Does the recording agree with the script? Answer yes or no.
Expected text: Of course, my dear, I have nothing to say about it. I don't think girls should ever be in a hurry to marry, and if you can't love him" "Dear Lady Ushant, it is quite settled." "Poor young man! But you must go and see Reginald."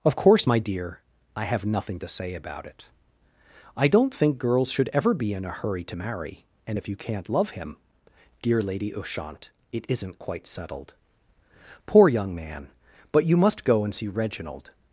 no